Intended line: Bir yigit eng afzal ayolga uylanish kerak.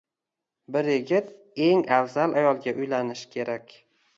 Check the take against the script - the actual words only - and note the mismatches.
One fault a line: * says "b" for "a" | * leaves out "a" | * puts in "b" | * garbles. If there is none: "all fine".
all fine